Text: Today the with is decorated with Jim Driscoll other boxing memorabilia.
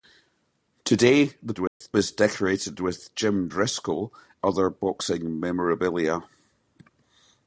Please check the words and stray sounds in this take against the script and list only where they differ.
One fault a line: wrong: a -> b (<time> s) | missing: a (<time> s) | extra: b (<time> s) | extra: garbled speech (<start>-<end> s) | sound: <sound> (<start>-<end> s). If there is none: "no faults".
sound: dropout (1.7-1.8 s)